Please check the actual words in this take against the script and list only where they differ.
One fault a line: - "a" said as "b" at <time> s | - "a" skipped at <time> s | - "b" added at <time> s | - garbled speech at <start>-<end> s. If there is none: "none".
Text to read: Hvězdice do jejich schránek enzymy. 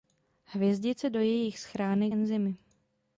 none